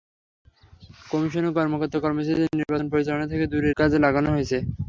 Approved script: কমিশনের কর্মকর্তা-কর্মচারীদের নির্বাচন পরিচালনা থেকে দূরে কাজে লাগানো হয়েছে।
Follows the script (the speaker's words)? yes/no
yes